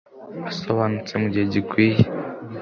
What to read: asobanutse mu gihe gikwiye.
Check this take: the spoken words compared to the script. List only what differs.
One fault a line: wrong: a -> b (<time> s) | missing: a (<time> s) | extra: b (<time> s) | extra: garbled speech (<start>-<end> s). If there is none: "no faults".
no faults